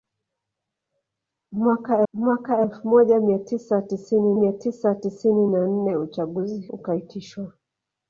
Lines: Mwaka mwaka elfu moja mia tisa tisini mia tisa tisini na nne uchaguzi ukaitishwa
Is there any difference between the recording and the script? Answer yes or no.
no